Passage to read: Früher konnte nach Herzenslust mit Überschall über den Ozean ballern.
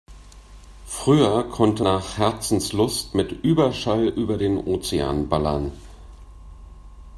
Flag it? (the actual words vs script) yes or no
no